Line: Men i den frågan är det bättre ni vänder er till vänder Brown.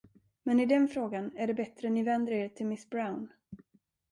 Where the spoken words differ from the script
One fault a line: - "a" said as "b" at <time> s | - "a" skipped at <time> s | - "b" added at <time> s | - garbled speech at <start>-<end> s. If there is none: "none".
- "vänder" said as "miss" at 2.7 s